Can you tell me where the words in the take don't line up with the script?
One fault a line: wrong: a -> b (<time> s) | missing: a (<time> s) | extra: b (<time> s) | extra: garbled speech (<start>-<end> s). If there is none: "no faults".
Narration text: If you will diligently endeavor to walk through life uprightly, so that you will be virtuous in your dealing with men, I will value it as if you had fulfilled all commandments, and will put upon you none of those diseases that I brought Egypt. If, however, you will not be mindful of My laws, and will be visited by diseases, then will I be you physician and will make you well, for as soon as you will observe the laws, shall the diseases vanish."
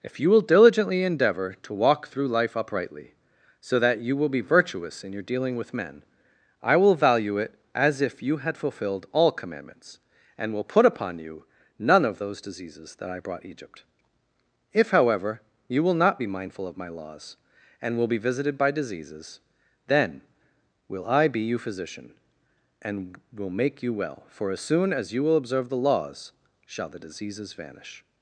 no faults